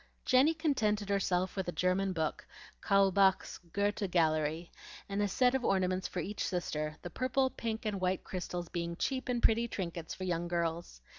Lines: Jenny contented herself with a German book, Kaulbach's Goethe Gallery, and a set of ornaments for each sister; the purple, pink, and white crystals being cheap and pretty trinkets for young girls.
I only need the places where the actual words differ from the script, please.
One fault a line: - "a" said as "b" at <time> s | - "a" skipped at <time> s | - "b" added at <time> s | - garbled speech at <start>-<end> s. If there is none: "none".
none